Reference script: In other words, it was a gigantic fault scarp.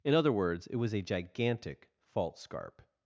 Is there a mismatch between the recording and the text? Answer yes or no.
no